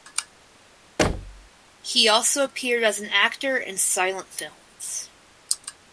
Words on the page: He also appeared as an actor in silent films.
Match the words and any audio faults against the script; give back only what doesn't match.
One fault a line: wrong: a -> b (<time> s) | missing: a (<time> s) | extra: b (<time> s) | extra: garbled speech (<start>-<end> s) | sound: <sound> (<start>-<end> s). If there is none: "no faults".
sound: thud (1.0-1.5 s)